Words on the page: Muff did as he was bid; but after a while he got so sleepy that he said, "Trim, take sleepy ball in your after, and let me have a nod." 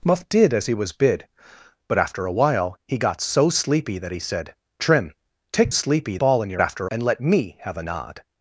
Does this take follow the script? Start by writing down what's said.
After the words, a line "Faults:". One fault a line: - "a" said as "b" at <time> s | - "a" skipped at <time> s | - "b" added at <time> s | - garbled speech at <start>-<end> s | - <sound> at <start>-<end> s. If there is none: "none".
Muff did as he was bid; but after a while he got so sleepy that he said, "Trim, take sleepy ball in your after, and let me have a nod."
Faults:
none